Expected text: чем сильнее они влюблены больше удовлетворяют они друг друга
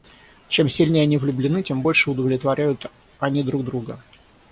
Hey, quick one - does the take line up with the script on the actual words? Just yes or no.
no